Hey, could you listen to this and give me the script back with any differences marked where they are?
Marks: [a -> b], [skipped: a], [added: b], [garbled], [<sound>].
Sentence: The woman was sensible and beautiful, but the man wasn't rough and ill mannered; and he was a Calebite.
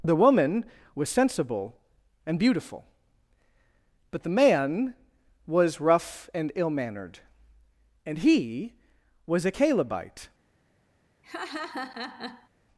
The woman was sensible and beautiful, but the man [wasn't -> was] rough and ill mannered; and he was a Calebite. [laugh]